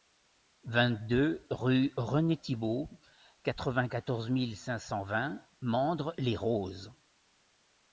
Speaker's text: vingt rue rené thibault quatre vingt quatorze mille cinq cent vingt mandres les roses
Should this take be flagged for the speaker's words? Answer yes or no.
yes